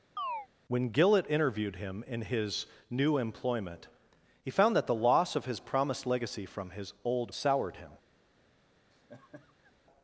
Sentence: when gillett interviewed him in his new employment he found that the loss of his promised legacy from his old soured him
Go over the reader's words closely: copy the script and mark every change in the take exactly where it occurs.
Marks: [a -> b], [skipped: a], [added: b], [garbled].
when gillett interviewed him in his new employment he found that the loss of his promised legacy from his old soured him